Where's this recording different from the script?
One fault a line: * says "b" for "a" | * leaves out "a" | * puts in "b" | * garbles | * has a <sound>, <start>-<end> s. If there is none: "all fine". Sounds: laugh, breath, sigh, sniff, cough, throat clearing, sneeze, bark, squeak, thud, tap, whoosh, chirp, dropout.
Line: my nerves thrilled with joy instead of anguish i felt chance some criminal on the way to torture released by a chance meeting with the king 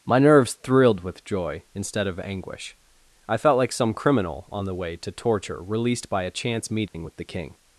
* says "like" for "chance"
* has a dropout, 6.9-6.9 s